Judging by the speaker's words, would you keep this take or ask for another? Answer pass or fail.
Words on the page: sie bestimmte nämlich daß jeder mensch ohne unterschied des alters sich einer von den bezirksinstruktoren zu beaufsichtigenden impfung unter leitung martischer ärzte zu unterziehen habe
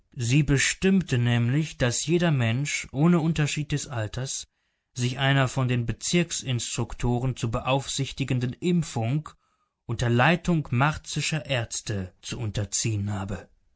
pass